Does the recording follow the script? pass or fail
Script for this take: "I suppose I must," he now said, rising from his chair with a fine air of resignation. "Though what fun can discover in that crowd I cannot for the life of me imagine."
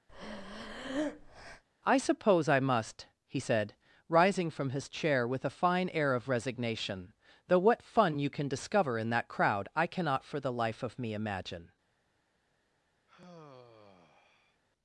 fail